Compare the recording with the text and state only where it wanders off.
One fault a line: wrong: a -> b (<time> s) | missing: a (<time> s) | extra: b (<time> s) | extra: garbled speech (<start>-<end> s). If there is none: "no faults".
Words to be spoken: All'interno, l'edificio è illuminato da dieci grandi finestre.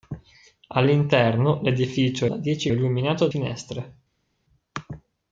missing: illuminato (2.3 s)
wrong: grandi -> illuminato (2.7 s)